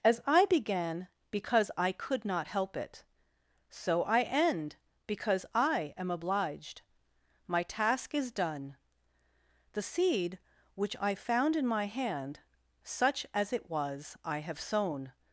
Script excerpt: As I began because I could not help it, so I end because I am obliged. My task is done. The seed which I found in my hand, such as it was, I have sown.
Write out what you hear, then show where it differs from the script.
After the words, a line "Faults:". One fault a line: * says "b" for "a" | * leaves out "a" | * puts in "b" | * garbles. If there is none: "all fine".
As I began because I could not help it, so I end because I am obliged. My task is done. The seed which I found in my hand, such as it was, I have sown.
Faults:
all fine